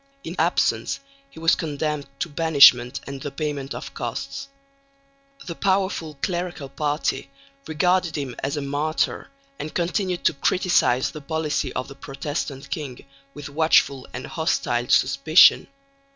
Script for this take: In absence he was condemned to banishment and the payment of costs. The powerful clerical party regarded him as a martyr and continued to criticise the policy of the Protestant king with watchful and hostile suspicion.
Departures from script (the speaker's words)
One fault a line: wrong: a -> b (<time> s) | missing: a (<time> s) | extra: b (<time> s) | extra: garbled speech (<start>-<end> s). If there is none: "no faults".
no faults